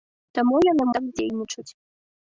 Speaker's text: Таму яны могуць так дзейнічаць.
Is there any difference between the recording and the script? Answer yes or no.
yes